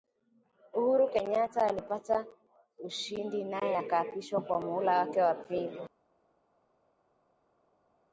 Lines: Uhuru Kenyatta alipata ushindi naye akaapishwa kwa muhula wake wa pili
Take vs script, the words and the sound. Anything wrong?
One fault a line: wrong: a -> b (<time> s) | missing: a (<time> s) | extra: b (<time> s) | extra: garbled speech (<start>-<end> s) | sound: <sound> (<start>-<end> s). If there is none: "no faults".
no faults